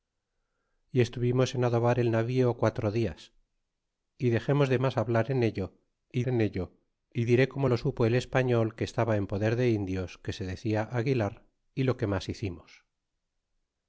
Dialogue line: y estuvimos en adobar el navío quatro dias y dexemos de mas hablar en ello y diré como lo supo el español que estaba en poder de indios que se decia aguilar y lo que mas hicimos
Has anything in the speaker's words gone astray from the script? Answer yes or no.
yes